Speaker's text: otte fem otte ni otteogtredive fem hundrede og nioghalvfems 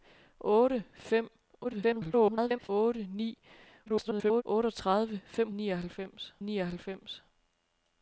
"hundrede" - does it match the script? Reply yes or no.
no